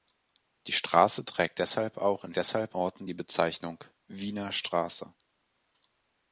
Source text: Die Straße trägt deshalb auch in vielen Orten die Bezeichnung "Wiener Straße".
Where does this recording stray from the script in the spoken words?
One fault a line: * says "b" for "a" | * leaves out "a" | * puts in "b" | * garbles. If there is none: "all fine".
* says "deshalb" for "vielen"